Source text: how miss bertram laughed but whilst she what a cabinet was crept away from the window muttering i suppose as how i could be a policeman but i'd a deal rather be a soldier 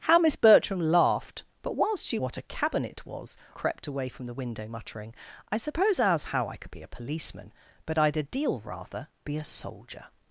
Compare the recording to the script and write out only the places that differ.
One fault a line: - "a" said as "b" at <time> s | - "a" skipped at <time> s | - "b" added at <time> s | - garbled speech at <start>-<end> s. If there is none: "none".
none